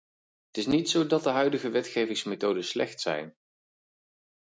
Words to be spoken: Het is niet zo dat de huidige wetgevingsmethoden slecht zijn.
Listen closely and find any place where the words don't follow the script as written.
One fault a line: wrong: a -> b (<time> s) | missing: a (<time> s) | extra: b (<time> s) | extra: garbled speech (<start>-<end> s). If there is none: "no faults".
no faults